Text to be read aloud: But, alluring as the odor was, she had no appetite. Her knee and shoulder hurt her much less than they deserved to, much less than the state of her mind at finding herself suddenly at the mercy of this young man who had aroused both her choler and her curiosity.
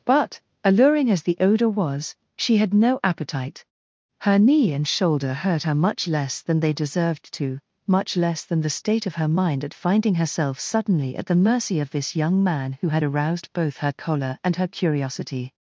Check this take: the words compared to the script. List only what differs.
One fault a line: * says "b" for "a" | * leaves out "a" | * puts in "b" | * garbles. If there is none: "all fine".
all fine